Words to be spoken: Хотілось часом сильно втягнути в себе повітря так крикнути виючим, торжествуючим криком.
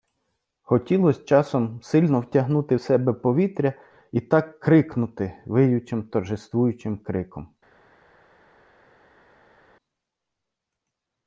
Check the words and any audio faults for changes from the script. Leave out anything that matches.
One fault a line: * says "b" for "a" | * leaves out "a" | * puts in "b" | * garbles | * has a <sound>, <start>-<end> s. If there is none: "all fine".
* puts in "і"